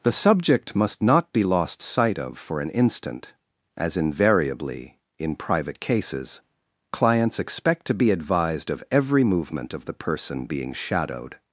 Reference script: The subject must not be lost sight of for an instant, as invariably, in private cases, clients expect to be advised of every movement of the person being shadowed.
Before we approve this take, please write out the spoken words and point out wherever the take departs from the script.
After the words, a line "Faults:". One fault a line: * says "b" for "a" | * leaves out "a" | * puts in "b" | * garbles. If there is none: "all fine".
The subject must not be lost sight of for an instant, as invariably, in private cases, clients expect to be advised of every movement of the person being shadowed.
Faults:
all fine